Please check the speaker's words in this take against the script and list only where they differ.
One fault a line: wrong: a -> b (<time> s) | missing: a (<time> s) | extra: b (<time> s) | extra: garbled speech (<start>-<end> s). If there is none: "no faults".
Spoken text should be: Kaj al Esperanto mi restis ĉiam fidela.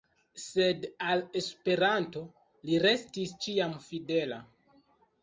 wrong: Kaj -> Sed (0.4 s)
wrong: mi -> li (2.7 s)